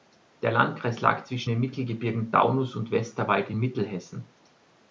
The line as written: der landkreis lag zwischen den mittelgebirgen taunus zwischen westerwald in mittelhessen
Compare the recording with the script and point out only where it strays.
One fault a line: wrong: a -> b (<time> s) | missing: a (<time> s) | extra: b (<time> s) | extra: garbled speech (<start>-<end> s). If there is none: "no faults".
wrong: zwischen -> und (2.8 s)